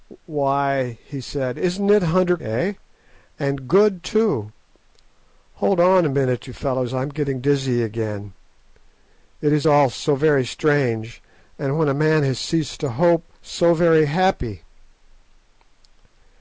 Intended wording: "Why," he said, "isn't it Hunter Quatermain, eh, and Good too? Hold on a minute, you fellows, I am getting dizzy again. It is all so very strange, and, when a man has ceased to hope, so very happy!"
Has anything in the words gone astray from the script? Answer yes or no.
yes